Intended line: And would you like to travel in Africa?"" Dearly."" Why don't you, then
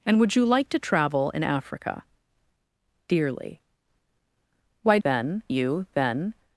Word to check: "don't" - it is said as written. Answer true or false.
false